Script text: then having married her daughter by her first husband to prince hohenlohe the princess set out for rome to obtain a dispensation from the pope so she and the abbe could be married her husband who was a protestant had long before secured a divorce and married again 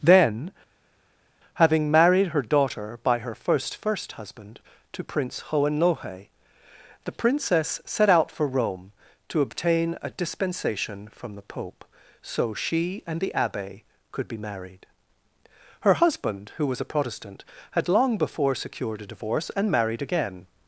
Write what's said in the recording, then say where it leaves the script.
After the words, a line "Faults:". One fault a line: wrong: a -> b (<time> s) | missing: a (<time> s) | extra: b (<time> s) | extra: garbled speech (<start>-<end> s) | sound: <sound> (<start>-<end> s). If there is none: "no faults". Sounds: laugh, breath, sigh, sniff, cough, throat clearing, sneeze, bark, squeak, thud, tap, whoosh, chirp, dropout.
then having married her daughter by her first first husband to prince hohenlohe the princess set out for rome to obtain a dispensation from the pope so she and the abbe could be married her husband who was a protestant had long before secured a divorce and married again
Faults:
extra: first (3.8 s)